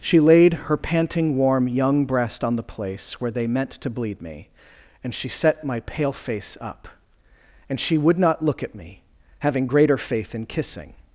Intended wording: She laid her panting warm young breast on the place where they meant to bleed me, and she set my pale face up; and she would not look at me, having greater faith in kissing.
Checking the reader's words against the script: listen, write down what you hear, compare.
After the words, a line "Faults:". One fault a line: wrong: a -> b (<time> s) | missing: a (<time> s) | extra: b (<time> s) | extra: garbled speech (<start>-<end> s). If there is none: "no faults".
She laid her panting warm young breast on the place where they meant to bleed me, and she set my pale face up; and she would not look at me, having greater faith in kissing.
Faults:
no faults